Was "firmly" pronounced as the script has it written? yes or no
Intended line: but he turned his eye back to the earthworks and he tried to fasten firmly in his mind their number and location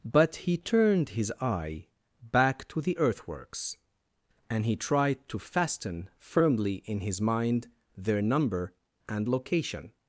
yes